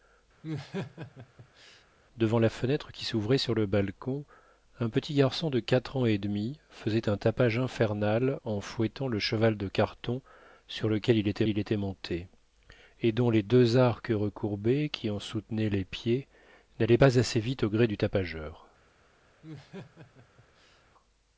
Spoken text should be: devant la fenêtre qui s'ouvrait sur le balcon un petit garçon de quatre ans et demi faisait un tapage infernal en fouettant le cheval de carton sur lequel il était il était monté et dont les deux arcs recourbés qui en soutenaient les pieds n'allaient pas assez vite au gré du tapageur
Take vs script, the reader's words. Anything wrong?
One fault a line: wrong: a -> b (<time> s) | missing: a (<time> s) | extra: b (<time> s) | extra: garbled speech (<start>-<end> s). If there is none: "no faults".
no faults